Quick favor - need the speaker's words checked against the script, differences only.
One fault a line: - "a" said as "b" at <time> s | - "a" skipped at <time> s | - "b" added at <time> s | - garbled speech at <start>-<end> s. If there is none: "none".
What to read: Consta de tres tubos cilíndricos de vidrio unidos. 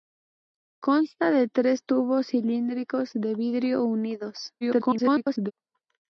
- garbled speech at 4.6-5.5 s